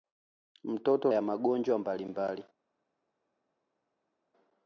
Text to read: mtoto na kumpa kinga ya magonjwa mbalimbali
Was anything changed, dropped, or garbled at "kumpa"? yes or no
yes